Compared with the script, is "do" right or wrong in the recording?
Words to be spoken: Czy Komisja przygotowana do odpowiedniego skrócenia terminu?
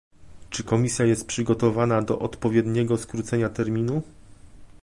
right